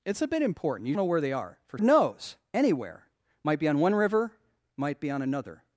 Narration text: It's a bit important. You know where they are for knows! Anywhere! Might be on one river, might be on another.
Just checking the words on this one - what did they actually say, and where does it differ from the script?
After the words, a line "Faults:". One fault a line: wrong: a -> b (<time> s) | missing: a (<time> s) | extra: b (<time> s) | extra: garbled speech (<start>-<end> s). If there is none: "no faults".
It's a bit important. You know where they are for knows! Anywhere! Might be on one river, might be on another.
Faults:
no faults